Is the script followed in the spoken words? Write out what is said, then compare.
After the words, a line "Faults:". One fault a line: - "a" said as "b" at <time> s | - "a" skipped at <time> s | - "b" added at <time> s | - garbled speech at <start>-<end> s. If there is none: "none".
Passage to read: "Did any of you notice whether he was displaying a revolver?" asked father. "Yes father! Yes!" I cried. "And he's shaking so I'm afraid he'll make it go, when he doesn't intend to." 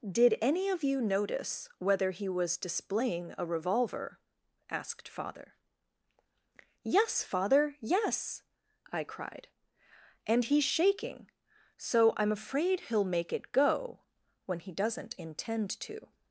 "Did any of you notice whether he was displaying a revolver?" asked father. "Yes father! Yes!" I cried. "And he's shaking so I'm afraid he'll make it go, when he doesn't intend to."
Faults:
none